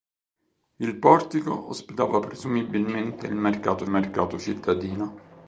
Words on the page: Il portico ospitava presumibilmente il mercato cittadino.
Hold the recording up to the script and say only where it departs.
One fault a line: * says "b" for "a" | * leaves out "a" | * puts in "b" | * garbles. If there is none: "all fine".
* puts in "mercato"